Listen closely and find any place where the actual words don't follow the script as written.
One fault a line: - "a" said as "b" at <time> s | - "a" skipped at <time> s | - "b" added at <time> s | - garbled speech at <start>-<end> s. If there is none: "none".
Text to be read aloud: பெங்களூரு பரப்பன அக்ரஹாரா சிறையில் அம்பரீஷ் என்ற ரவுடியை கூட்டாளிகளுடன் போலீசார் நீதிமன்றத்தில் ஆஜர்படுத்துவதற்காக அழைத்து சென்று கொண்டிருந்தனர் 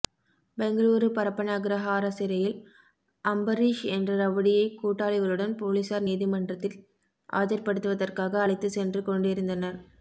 none